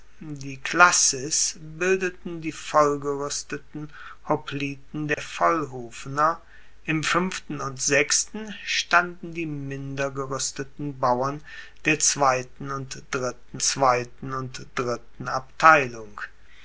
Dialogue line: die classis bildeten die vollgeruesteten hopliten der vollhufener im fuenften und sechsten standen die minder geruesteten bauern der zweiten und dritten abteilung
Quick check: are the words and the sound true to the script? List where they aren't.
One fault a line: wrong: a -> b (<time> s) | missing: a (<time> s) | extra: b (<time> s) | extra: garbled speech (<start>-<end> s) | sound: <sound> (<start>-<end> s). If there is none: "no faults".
sound: dropout (5.1-5.2 s)
extra: zweiten und dritten (13.6 s)